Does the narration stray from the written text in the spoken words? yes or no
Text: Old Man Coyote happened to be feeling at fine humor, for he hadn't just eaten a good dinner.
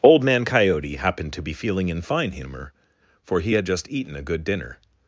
yes